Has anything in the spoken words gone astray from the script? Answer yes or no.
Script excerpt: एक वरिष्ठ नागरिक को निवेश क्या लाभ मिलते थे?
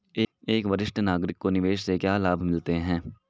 yes